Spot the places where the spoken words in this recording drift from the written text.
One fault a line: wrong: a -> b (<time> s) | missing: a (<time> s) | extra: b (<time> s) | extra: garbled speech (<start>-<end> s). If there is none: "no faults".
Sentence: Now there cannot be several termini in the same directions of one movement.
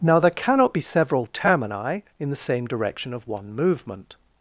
wrong: directions -> direction (2.7 s)